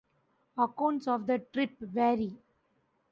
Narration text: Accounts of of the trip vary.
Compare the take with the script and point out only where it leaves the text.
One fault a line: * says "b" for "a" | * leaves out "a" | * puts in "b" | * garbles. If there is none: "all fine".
* leaves out "of"